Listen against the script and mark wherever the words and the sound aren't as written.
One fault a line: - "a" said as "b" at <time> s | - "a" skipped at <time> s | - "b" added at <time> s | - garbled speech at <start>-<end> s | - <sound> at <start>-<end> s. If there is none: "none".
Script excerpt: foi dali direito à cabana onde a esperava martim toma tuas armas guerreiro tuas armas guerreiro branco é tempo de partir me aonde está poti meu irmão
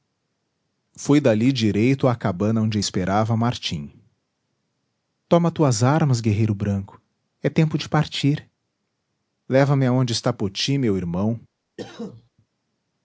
- "tuas armas guerreiro" skipped at 6.5 s
- "leva" added at 9.5 s
- cough at 11.8-12.3 s